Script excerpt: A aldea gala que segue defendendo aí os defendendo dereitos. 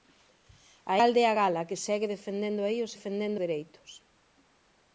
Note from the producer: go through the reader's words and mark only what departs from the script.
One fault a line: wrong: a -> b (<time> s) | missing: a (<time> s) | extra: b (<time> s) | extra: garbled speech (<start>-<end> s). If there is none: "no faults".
no faults